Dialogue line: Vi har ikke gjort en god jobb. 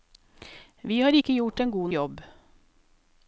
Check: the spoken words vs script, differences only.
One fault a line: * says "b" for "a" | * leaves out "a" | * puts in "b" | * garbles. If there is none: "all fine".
all fine